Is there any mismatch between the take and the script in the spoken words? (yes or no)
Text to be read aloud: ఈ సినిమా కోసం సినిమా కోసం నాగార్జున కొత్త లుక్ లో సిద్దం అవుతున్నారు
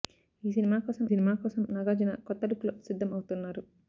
no